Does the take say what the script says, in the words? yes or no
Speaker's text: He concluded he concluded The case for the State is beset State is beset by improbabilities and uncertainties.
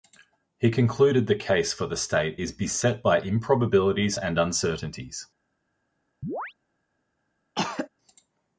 no